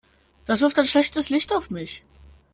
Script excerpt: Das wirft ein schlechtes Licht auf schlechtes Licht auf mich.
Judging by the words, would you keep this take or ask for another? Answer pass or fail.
fail